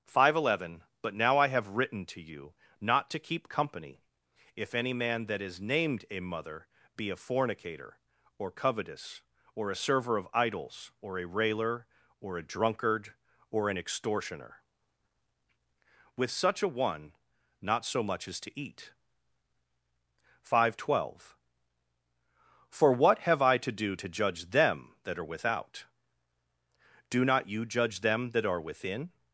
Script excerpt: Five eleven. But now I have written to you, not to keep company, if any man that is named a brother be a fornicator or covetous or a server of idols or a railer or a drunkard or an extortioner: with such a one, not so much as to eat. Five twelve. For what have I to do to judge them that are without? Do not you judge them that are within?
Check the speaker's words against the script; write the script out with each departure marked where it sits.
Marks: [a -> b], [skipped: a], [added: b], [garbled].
Five eleven. But now I have written to you, not to keep company, if any man that is named a [brother -> mother] be a fornicator or covetous or a server of idols or a railer or a drunkard or an extortioner: with such a one, not so much as to eat. Five twelve. For what have I to do to judge them that are without? Do not you judge them that are within?